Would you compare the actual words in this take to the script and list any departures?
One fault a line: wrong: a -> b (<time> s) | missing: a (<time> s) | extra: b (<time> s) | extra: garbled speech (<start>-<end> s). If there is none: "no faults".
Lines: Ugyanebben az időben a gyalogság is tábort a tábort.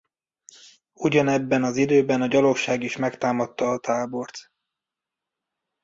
wrong: tábort -> megtámadta (3.0 s)